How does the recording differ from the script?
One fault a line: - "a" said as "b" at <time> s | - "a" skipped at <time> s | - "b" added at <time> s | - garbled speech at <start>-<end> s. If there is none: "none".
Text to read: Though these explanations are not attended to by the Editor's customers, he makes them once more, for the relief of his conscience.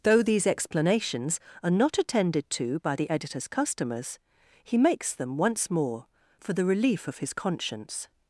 none